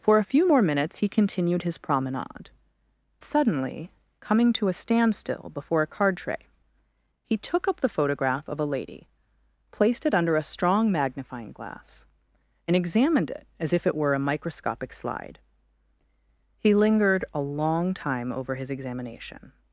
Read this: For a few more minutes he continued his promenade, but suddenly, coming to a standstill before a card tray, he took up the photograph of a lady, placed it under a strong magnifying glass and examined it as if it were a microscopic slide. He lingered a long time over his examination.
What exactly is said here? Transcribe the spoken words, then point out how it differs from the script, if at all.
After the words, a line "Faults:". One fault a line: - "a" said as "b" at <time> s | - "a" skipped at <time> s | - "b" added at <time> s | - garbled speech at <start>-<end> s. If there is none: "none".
For a few more minutes he continued his promenade, suddenly, coming to a standstill before a card tray, he took up the photograph of a lady, placed it under a strong magnifying glass and examined it as if it were a microscopic slide. He lingered a long time over his examination.
Faults:
- "but" skipped at 2.5 s